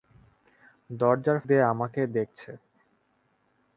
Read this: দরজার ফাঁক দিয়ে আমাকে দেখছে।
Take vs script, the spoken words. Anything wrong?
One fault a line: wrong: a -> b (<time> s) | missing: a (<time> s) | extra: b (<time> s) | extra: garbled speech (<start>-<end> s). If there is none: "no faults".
missing: ফাঁক (1.4 s)